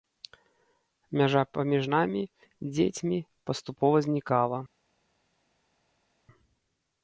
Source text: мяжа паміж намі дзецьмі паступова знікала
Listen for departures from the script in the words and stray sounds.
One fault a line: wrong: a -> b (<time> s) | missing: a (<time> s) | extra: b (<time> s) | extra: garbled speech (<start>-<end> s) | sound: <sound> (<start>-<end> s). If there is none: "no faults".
no faults